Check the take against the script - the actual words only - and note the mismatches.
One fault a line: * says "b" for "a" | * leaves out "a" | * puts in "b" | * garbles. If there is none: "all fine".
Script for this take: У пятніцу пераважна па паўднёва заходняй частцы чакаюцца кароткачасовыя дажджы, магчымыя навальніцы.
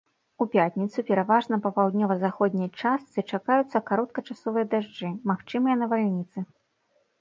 all fine